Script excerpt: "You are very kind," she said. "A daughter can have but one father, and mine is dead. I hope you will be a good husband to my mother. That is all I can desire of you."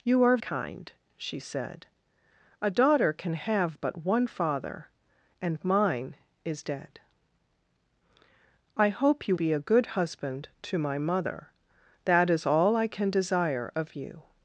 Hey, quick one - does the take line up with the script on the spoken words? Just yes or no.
no